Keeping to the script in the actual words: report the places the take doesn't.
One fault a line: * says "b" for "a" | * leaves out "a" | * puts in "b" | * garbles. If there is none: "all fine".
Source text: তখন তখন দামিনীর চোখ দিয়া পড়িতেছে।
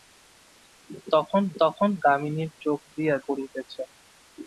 all fine